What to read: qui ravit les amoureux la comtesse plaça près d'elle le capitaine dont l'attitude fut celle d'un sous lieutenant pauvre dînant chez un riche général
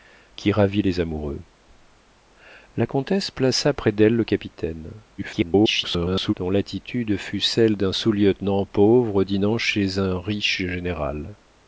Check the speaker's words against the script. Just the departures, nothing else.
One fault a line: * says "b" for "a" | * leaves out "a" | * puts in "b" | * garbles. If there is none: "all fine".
* garbles